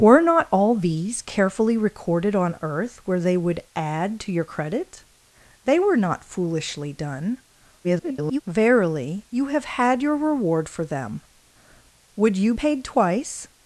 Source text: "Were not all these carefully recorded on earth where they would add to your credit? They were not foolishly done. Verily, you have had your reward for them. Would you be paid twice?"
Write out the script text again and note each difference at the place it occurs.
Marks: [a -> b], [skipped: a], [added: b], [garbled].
"Were not all these carefully recorded on earth where they would add to your credit? They were not foolishly done. [garbled] Verily, you have had your reward for them. Would you [skipped: be] paid twice?"